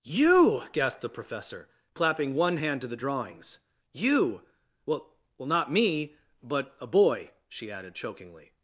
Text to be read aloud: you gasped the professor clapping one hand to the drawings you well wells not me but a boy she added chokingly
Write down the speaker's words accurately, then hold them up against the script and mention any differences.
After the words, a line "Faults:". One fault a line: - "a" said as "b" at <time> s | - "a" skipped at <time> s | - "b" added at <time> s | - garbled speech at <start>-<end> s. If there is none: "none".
you gasped the professor clapping one hand to the drawings you well well not me but a boy she added chokingly
Faults:
- "wells" said as "well" at 5.4 s